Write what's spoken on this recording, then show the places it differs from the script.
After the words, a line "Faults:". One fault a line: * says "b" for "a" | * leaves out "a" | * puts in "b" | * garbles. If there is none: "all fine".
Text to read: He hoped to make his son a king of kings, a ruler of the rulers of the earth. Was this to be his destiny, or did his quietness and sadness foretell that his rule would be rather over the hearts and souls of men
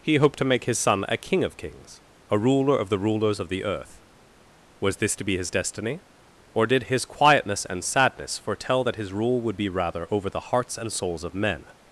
He hoped to make his son a king of kings, a ruler of the rulers of the earth. Was this to be his destiny, or did his quietness and sadness foretell that his rule would be rather over the hearts and souls of men
Faults:
all fine